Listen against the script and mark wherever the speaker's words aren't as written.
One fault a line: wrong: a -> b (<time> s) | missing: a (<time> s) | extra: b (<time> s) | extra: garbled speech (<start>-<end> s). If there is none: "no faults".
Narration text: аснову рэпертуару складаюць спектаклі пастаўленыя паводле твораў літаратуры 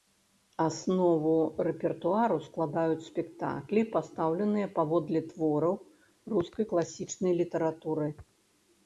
extra: рускай класічнай (6.3 s)